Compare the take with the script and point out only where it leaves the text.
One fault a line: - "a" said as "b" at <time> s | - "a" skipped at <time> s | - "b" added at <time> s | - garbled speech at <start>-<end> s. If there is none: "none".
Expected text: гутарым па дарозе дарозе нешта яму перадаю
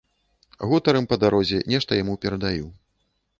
- "дарозе" skipped at 1.6 s